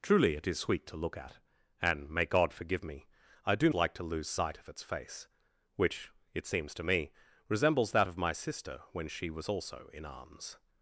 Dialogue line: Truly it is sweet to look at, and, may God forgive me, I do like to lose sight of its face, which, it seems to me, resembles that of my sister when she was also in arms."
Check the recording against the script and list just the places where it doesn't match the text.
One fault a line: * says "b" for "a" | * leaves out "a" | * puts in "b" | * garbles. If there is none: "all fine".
all fine